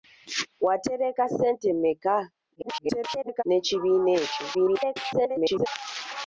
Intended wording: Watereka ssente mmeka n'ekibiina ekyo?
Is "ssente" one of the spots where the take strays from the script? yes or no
no